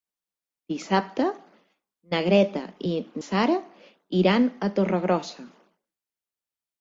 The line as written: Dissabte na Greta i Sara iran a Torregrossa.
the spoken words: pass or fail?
pass